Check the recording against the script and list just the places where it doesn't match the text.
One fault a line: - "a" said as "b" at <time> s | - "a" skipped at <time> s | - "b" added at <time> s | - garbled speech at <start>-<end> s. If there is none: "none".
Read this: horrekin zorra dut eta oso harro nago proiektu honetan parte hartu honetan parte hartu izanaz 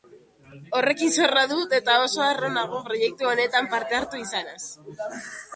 - "honetan parte hartu" skipped at 4.2 s